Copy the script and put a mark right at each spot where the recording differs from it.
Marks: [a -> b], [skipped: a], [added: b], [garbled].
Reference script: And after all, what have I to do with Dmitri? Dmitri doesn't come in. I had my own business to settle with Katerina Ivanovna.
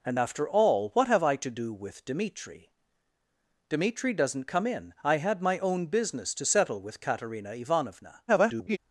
And after all, what have I to do with Dmitri? Dmitri doesn't come in. I had my own business to settle with Katerina Ivanovna. [garbled]